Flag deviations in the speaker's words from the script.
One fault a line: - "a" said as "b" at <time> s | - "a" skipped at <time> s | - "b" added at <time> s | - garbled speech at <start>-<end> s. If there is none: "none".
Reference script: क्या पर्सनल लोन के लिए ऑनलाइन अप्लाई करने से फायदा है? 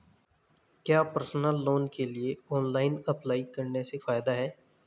none